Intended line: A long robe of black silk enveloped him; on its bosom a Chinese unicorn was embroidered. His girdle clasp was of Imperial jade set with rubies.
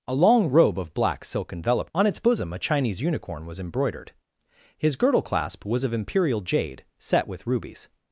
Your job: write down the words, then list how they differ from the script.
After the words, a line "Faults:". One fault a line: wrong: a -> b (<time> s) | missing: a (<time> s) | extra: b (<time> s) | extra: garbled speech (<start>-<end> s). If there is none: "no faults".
A long robe of black silk enveloped; on its bosom a Chinese unicorn was embroidered. His girdle clasp was of Imperial jade set with rubies.
Faults:
missing: him (1.9 s)